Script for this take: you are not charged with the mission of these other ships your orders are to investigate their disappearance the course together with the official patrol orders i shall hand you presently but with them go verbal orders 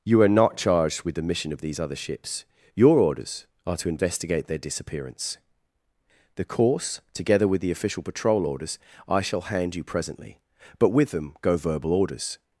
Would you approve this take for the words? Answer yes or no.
yes